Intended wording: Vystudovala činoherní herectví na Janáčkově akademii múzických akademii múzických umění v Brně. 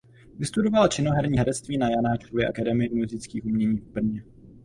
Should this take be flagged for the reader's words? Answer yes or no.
yes